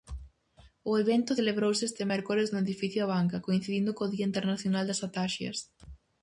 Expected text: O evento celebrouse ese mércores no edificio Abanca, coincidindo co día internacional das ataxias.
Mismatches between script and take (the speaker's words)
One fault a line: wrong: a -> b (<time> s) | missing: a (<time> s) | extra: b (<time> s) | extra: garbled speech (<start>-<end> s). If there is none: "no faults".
wrong: ese -> este (1.9 s)